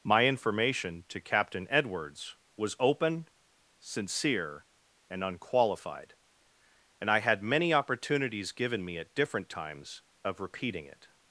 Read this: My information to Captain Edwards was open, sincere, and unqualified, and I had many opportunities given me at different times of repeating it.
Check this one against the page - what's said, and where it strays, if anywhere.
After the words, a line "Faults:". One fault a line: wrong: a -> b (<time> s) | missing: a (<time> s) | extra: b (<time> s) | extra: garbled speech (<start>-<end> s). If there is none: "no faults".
My information to Captain Edwards was open, sincere, and unqualified, and I had many opportunities given me at different times of repeating it.
Faults:
no faults